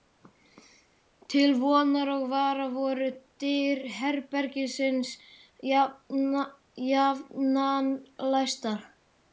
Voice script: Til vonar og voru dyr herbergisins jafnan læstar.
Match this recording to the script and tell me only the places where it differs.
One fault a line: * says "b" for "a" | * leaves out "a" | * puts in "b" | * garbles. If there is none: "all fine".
* puts in "vara"